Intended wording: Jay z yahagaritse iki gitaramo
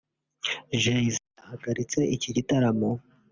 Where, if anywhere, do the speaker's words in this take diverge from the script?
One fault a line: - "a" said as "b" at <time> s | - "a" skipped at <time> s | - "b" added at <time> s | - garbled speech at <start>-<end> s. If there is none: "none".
none